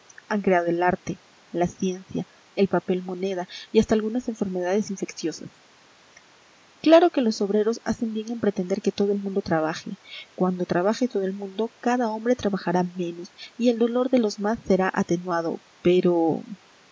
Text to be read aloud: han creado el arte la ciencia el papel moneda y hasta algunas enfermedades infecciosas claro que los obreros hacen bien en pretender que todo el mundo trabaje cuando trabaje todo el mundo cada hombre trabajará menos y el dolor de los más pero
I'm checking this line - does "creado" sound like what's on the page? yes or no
yes